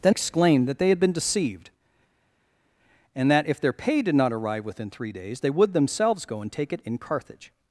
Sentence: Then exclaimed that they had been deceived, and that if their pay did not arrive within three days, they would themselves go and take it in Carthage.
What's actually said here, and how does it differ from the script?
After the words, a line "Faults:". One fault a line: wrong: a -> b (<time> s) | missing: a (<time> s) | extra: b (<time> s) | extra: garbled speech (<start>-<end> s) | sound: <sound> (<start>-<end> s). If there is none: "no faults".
Then exclaimed that they had been deceived, and that if their pay did not arrive within three days, they would themselves go and take it in Carthage.
Faults:
no faults